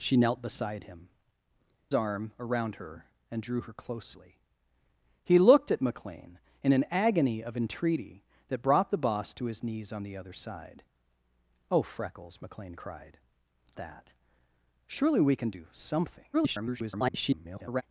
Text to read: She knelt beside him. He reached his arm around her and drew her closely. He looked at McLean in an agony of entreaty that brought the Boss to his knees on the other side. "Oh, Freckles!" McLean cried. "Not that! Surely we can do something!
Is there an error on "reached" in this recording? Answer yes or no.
yes